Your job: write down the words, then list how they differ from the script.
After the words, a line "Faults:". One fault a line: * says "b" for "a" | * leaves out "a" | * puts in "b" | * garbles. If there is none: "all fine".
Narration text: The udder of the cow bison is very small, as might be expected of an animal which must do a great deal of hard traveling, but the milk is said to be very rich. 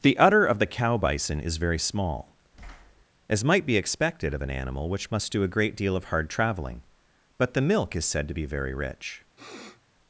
The udder of the cow bison is very small, as might be expected of an animal which must do a great deal of hard traveling, but the milk is said to be very rich.
Faults:
all fine